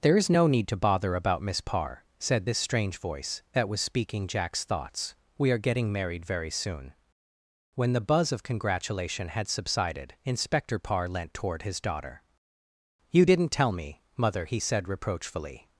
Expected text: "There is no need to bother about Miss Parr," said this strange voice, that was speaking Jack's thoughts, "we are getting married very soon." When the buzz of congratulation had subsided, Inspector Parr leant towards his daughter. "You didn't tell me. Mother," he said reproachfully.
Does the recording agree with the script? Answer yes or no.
no